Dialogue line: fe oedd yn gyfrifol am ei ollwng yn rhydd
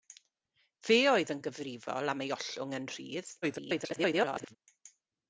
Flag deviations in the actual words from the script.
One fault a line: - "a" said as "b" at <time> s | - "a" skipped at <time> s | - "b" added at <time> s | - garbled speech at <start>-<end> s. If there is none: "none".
- garbled speech at 3.4-4.6 s